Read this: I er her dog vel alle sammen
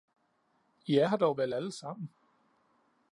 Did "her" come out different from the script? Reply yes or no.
no